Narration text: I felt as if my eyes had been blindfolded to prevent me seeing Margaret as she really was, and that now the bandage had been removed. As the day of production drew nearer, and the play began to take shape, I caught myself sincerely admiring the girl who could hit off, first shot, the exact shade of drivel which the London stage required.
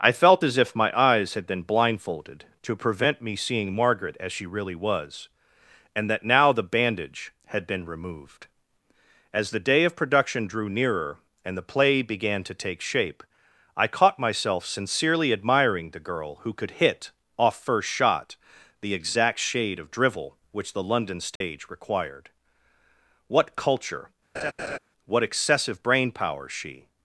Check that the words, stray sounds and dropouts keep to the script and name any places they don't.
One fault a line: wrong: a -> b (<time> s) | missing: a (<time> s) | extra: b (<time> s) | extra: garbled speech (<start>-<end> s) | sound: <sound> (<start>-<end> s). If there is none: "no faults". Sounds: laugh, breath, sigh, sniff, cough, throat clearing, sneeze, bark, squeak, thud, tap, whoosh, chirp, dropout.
sound: dropout (21.4-21.4 s)
extra: What culture what excessive brain power she (23.3 s)
sound: laugh (24.3-24.8 s)